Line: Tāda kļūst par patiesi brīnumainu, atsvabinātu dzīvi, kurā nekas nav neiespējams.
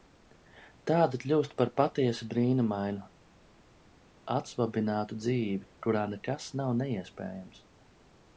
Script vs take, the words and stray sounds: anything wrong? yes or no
no